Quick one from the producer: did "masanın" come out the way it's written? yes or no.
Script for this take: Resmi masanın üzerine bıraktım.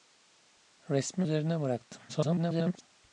no